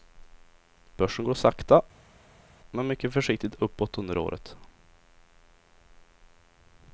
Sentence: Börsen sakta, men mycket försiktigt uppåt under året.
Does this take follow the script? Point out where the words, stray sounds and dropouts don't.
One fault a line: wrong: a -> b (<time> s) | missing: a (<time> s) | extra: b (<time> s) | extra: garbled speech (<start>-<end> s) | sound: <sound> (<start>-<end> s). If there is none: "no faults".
extra: går (1.2 s)